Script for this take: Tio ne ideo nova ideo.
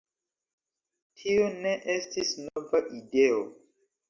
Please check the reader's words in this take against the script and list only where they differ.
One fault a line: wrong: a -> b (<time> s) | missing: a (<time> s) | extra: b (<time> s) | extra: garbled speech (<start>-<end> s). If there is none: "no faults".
wrong: ideo -> estis (1.9 s)